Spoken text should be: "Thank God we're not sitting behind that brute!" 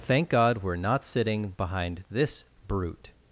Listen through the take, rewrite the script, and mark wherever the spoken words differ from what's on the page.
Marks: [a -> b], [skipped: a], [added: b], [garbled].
"Thank God we're not sitting behind [that -> this] brute!"